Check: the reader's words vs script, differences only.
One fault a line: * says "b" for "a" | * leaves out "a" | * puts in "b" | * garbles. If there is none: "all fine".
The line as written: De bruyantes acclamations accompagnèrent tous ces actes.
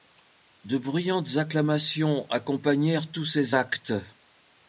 all fine